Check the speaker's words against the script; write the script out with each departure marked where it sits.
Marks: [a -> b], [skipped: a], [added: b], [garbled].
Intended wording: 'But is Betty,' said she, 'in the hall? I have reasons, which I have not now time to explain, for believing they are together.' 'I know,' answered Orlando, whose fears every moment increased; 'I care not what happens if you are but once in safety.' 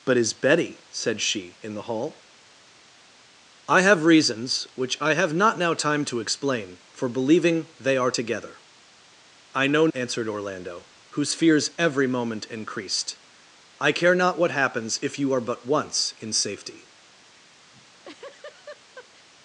'But is Betty,' said she, 'in the hall? I have reasons, which I have not now time to explain, for believing they are together.' 'I know,' answered Orlando, whose fears every moment increased; 'I care not what happens if you are but once in safety.'